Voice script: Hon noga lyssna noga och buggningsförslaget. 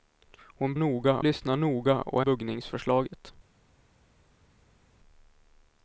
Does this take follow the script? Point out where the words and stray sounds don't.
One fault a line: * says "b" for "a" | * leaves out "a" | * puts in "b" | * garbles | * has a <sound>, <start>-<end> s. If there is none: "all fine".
all fine